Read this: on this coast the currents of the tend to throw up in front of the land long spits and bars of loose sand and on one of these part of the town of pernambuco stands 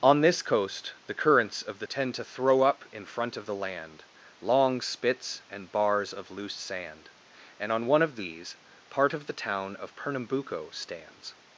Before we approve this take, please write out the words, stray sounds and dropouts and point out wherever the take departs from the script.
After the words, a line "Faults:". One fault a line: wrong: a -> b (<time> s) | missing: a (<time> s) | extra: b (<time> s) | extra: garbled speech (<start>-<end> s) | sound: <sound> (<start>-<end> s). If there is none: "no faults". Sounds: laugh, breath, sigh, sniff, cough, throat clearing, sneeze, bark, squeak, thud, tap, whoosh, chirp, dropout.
on this coast the currents of the tend to throw up in front of the land long spits and bars of loose sand and on one of these part of the town of pernambuco stands
Faults:
no faults